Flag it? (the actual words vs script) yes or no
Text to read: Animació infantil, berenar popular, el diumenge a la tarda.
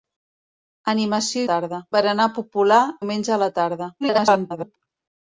yes